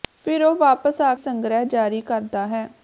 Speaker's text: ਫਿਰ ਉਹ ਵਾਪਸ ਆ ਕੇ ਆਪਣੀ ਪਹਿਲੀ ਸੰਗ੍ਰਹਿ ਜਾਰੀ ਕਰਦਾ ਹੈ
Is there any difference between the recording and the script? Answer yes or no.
yes